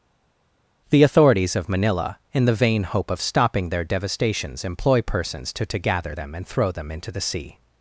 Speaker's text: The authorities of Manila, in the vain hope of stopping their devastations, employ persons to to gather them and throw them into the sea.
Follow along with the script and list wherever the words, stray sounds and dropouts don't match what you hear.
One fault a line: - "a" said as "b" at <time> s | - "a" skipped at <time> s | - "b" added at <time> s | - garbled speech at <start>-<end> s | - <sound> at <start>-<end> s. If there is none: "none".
none